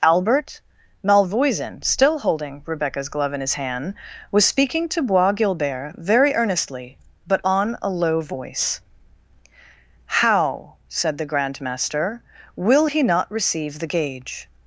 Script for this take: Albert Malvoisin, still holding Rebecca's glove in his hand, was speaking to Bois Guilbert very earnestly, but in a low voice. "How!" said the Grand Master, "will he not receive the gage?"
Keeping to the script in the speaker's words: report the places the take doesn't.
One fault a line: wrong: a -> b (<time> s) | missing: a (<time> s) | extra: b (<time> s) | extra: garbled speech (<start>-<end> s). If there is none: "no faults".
wrong: in -> on (7.4 s)